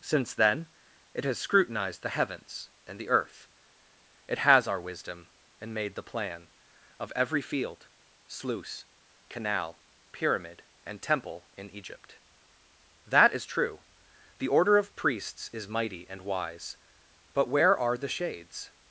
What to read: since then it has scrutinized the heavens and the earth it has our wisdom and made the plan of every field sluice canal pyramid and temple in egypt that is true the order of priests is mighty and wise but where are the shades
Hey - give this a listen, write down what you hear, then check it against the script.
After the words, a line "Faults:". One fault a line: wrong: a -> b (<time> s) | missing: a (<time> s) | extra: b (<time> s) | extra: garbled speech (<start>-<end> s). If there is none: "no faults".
since then it has scrutinized the heavens and the earth it has our wisdom and made the plan of every field sluice canal pyramid and temple in egypt that is true the order of priests is mighty and wise but where are the shades
Faults:
no faults